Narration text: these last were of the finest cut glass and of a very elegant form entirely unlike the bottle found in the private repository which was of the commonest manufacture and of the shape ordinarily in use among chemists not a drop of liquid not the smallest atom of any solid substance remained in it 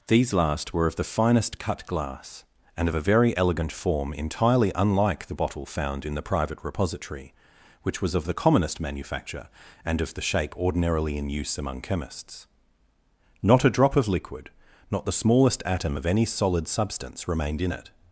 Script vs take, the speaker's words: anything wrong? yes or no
no